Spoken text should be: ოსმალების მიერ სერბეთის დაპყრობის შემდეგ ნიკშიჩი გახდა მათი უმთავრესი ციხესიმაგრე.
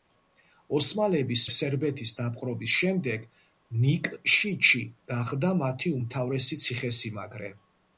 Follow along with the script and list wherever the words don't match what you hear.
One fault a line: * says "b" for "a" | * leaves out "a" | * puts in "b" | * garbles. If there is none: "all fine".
* leaves out "მიერ"